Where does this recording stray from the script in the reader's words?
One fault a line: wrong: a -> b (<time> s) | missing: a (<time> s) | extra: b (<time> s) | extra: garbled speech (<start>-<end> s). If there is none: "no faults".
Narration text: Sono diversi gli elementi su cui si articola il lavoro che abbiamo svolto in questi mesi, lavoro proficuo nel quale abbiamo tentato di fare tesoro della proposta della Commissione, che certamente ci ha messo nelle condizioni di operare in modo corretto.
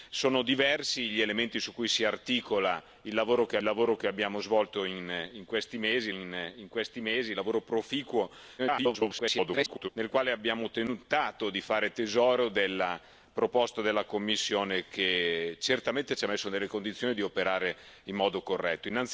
extra: lavoro che (3.6 s)
extra: in questi mesi (6.1 s)
extra: garbled speech (8.6-9.9 s)